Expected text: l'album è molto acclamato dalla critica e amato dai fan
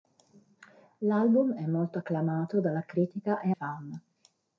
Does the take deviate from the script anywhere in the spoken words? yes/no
yes